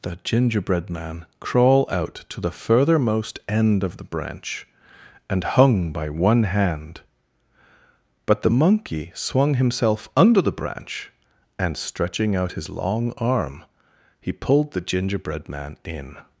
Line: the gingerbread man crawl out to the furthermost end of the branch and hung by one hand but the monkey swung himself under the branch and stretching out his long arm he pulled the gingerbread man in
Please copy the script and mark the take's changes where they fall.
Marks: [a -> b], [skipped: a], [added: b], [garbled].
the gingerbread man crawl out to the furthermost end of the branch and hung by one hand but the monkey swung himself under the branch and stretching out his long arm he pulled the gingerbread man in